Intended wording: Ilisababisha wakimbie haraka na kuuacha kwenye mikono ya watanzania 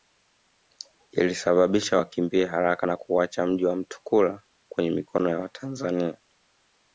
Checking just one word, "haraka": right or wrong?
right